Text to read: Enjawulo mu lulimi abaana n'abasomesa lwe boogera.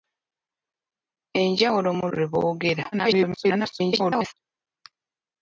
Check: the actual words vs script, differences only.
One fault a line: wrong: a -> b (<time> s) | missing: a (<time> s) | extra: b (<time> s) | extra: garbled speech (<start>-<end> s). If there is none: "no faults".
missing: lulimi abaana n'abasomesa (2.0 s)
extra: garbled speech (2.9-4.3 s)